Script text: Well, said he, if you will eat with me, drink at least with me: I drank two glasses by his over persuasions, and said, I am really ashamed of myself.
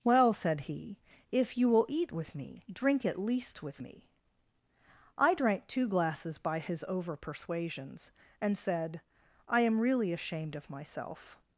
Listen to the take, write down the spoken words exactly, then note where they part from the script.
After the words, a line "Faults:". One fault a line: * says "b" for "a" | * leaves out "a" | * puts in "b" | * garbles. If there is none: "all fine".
Well, said he, if you will eat with me, drink at least with me: I drank two glasses by his over persuasions, and said, I am really ashamed of myself.
Faults:
all fine